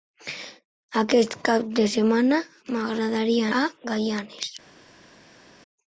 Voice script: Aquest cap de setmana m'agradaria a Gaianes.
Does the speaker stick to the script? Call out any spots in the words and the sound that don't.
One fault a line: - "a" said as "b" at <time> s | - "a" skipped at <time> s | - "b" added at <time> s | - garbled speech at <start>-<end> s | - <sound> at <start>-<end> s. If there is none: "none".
none